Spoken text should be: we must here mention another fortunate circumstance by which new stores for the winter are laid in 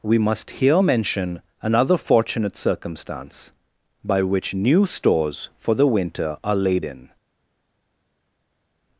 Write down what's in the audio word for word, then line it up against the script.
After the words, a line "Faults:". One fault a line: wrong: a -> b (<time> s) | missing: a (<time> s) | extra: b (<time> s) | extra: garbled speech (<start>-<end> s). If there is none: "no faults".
we must here mention another fortunate circumstance by which new stores for the winter are laid in
Faults:
no faults